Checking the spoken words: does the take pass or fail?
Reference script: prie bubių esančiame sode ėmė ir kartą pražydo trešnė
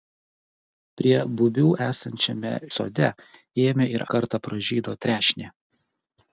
pass